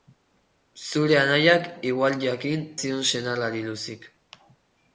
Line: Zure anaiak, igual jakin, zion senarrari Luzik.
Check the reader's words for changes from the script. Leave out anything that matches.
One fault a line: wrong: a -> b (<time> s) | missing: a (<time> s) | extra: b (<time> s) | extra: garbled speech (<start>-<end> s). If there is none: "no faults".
no faults